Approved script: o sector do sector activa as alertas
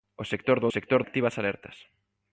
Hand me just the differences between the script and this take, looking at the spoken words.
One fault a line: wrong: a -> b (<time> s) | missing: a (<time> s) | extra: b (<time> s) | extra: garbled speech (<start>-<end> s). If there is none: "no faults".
no faults